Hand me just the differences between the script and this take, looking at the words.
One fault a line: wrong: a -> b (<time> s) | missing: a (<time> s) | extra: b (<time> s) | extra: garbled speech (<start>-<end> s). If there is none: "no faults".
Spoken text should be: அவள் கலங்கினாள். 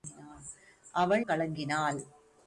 no faults